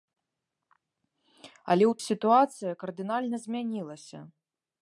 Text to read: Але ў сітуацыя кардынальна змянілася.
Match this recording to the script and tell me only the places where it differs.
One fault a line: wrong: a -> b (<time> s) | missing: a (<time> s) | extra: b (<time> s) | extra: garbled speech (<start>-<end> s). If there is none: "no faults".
no faults